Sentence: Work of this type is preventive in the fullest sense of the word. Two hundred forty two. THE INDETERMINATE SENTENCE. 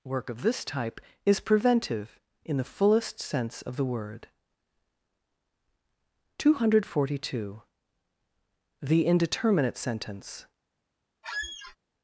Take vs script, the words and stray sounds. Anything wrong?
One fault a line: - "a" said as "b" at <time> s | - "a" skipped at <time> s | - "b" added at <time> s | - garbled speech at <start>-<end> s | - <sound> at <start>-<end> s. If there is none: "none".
- squeak at 11.2-11.8 s